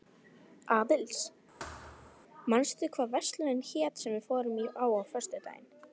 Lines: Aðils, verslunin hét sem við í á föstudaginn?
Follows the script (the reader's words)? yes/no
no